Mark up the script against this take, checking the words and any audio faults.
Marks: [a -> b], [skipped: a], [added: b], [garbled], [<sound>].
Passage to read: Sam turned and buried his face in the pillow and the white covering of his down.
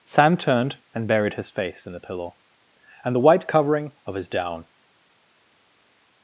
Sam turned and buried his face in the pillow and the white covering of his down.